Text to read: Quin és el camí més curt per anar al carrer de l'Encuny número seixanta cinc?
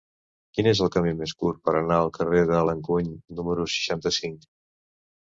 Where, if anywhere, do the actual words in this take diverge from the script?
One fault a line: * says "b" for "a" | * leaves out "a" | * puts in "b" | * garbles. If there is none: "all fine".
all fine